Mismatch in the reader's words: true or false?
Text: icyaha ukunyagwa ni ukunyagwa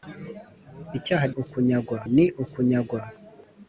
false